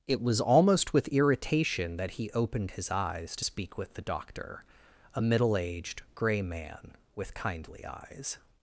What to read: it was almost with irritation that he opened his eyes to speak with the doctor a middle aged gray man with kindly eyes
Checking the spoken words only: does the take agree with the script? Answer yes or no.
yes